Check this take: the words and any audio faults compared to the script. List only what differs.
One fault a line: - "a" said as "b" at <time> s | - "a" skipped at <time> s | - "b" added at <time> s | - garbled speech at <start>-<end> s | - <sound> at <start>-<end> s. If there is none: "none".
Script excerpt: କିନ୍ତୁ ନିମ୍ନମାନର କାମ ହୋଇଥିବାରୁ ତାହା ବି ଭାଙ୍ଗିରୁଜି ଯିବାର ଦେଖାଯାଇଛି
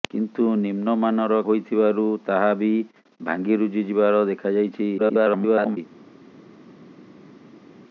- "କାମ" skipped at 1.4 s
- garbled speech at 5.0-5.8 s